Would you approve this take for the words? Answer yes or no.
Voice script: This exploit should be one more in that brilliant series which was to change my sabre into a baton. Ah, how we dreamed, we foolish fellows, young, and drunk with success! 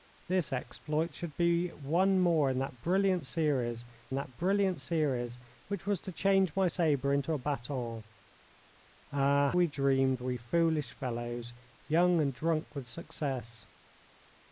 no